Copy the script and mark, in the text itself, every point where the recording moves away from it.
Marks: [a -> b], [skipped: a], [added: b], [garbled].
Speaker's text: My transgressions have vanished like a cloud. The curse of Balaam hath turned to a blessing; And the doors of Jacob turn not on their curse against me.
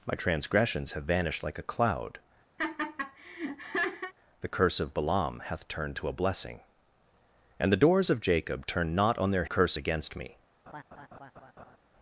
My transgressions have vanished like a cloud. The curse of Balaam hath turned to a blessing; And the doors of Jacob turn not on their curse against me.